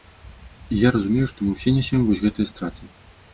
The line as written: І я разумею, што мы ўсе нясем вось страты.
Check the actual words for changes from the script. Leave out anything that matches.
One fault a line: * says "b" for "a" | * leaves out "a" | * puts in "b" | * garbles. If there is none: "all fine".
* puts in "гэтыя"